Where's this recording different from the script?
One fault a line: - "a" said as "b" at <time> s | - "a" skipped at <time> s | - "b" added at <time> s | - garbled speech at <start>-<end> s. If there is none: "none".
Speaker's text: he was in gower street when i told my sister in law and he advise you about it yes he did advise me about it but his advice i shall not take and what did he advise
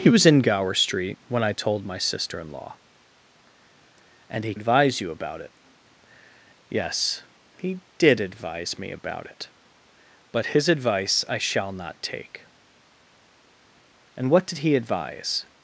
none